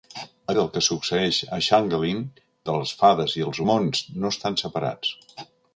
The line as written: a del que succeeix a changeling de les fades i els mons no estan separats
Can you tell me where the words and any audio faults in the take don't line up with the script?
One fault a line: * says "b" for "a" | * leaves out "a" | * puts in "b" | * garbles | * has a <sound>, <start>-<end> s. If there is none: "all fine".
all fine